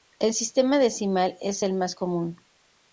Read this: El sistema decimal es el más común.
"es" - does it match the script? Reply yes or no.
yes